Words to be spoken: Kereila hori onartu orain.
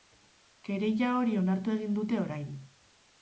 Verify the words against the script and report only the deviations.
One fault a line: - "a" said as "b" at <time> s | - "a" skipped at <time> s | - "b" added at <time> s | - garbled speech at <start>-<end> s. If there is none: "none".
- "egin dute" added at 1.8 s